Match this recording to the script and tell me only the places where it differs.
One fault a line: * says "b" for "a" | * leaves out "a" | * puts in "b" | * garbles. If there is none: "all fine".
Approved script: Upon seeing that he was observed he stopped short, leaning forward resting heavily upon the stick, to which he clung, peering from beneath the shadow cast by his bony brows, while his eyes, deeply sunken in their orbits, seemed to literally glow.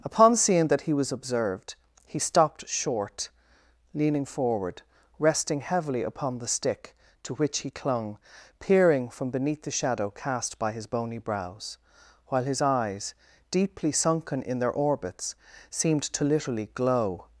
all fine